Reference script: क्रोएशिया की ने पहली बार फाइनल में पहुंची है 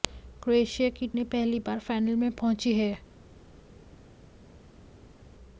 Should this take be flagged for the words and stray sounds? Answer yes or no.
no